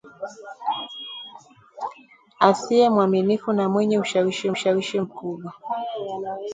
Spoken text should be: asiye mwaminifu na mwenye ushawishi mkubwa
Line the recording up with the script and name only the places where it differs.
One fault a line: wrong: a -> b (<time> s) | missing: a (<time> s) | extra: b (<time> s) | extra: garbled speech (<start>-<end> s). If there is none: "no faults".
extra: ushawishi (4.5 s)